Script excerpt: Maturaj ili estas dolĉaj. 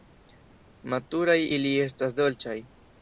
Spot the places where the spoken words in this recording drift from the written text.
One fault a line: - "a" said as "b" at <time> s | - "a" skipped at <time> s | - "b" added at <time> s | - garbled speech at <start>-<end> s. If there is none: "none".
none